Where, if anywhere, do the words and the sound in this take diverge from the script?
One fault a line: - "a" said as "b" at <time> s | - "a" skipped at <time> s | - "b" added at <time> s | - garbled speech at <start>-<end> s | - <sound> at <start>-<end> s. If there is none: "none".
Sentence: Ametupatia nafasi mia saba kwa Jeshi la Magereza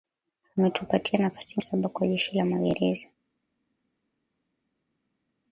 - "mia" skipped at 1.6 s